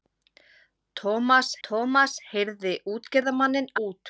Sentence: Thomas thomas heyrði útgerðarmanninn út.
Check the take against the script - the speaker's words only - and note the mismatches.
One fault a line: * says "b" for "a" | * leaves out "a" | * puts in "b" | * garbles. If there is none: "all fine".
all fine